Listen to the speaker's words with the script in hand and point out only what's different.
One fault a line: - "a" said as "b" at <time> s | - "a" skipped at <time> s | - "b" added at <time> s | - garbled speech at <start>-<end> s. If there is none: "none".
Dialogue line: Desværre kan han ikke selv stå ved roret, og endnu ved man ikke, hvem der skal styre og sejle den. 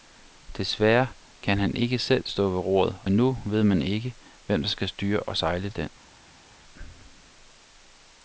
- "og" skipped at 3.0 s